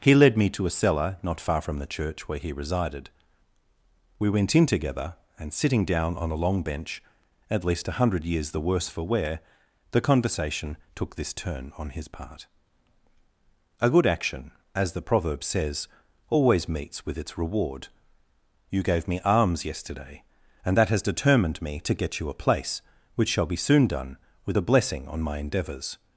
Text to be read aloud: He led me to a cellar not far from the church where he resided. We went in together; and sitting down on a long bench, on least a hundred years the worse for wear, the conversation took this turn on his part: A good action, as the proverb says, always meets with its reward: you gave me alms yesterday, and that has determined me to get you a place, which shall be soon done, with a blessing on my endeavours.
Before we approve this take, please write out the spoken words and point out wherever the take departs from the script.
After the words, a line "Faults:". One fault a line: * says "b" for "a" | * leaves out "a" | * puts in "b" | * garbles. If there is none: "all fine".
He led me to a cellar not far from the church where he resided. We went in together; and sitting down on a long bench, at least a hundred years the worse for wear, the conversation took this turn on his part: A good action, as the proverb says, always meets with its reward: you gave me alms yesterday, and that has determined me to get you a place, which shall be soon done, with a blessing on my endeavours.
Faults:
* says "at" for "on"